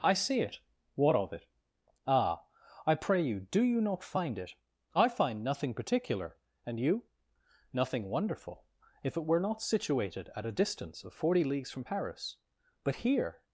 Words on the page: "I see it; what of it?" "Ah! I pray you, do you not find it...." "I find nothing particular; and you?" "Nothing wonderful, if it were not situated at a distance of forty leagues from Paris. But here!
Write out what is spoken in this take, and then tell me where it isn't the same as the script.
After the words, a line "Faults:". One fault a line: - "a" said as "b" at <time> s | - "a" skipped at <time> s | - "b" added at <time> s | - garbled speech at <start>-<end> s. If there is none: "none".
"I see it; what of it?" "Ah! I pray you, do you not find it...." "I find nothing particular; and you?" "Nothing wonderful, if it were not situated at a distance of forty leagues from Paris. But here!
Faults:
none